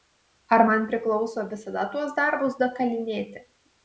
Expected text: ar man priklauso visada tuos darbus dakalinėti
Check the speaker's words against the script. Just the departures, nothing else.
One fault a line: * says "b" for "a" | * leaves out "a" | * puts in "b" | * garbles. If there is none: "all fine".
all fine